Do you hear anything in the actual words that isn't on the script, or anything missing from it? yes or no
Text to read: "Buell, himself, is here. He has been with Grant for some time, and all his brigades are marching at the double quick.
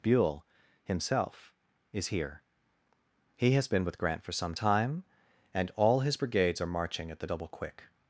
no